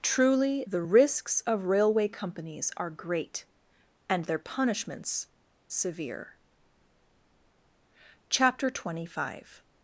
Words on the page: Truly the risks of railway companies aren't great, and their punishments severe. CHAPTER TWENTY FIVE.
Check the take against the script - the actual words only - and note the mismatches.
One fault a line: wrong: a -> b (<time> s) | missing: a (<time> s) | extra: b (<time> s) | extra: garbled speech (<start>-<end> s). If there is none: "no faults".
wrong: aren't -> are (2.8 s)